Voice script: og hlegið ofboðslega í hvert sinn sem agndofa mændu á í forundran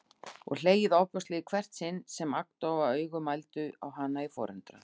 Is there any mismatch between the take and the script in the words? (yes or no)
yes